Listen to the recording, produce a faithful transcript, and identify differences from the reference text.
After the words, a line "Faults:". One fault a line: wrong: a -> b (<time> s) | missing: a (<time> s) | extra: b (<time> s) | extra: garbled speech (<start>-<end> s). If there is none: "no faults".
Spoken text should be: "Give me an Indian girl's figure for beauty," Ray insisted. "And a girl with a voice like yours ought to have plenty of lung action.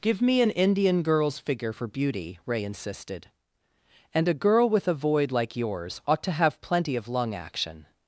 "Give me an Indian girl's figure for beauty," Ray insisted. "And a girl with a void like yours ought to have plenty of lung action.
Faults:
wrong: voice -> void (4.9 s)